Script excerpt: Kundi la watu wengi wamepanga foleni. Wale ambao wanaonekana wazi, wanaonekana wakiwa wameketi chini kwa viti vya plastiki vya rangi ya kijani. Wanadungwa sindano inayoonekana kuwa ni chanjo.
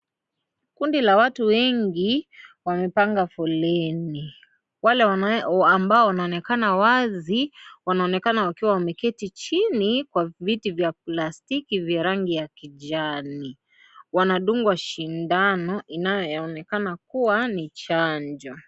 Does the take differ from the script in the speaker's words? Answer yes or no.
no